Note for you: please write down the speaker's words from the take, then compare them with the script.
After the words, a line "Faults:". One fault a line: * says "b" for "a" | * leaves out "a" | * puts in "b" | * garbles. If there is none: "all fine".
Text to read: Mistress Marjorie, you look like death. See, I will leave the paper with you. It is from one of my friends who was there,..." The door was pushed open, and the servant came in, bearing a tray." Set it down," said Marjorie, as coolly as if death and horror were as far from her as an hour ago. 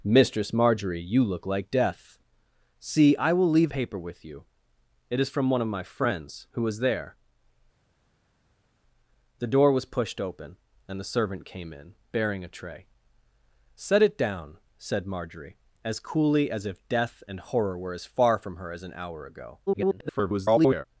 Mistress Marjorie, you look like death. See, I will leave paper with you. It is from one of my friends who was there,..." The door was pushed open, and the servant came in, bearing a tray." Set it down," said Marjorie, as coolly as if death and horror were as far from her as an hour ago. [garbled]
Faults:
* leaves out "the"
* garbles